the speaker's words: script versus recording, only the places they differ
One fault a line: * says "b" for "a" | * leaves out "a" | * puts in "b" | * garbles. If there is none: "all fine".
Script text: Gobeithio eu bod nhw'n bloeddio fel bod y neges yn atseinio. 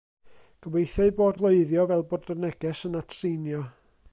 * leaves out "nhw'n"